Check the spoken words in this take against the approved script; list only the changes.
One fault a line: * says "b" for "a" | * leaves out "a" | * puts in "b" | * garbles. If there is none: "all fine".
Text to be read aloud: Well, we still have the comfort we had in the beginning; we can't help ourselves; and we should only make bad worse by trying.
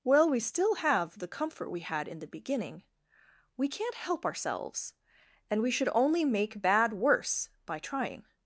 all fine